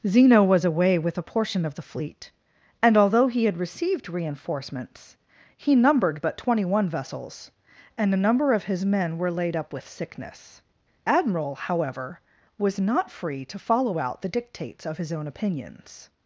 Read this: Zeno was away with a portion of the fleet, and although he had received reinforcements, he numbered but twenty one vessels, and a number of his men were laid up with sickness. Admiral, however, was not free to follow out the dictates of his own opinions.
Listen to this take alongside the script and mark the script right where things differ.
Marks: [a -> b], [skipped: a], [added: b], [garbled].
Zeno was away with a portion of the fleet, and although he had received reinforcements, he numbered but twenty one vessels, and a number of his men were laid up with sickness. Admiral, however, was not free to follow out the dictates of his own opinions.